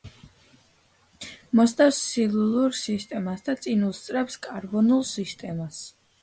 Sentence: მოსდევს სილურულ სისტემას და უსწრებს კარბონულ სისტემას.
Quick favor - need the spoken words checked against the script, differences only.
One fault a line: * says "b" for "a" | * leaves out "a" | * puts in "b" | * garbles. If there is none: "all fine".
* puts in "წინ"